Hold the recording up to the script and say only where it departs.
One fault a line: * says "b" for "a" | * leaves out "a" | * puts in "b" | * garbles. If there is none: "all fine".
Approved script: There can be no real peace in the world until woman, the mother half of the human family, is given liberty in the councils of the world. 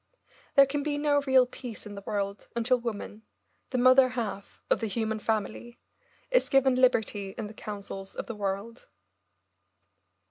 all fine